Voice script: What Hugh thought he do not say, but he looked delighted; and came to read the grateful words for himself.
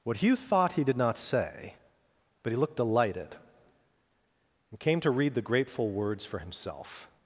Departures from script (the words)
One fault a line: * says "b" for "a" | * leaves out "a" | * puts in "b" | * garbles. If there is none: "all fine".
* says "did" for "do"